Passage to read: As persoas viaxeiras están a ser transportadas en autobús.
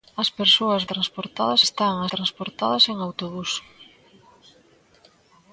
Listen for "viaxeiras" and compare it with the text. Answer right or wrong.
wrong